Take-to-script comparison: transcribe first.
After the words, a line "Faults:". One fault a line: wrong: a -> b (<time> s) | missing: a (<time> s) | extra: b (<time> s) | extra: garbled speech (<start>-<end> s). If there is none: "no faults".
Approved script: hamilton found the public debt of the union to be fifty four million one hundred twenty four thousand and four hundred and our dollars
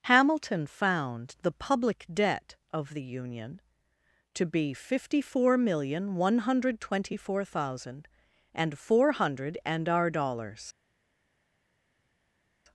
hamilton found the public debt of the union to be fifty four million one hundred twenty four thousand and four hundred and our dollars
Faults:
no faults